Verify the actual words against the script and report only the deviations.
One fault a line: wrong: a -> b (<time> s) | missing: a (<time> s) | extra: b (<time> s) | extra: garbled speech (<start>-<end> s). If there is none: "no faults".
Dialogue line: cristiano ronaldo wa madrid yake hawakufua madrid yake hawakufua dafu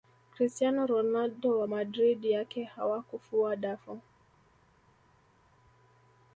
missing: madrid yake hawakufua (3.6 s)